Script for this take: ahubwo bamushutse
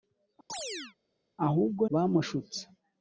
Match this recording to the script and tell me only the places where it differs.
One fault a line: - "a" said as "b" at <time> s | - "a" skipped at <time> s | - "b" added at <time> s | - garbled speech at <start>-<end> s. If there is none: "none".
none